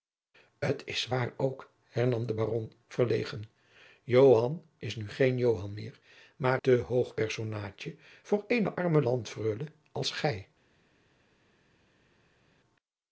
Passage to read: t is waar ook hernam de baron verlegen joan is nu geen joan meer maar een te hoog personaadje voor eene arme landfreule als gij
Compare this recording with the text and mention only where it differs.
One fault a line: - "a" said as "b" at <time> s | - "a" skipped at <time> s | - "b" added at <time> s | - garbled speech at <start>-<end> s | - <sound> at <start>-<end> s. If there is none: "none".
- "een" skipped at 6.6 s